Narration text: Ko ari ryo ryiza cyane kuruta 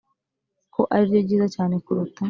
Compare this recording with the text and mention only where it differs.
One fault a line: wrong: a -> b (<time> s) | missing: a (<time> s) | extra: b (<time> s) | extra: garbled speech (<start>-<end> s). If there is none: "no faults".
no faults